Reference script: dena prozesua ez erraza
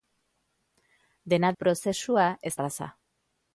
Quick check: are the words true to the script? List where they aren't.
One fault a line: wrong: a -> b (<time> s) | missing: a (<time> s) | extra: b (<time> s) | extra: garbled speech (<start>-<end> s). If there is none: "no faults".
no faults